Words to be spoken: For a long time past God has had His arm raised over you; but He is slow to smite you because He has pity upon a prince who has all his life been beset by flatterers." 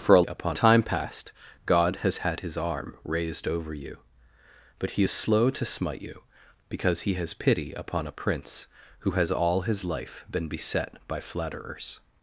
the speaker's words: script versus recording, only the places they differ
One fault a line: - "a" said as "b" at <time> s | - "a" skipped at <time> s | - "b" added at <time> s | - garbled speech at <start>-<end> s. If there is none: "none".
- "long" said as "upon" at 0.2 s